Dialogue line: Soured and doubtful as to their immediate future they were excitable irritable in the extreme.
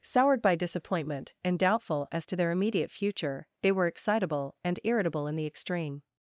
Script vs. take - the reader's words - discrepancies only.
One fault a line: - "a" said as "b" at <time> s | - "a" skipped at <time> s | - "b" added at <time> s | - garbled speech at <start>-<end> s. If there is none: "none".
- "by disappointment" added at 0.4 s
- "and" added at 4.6 s